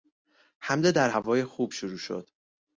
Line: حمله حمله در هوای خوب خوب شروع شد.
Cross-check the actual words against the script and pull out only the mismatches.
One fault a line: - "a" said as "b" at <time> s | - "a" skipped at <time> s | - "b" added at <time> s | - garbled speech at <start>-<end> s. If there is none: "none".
- "حمله" skipped at 0.9 s
- "خوب" skipped at 1.7 s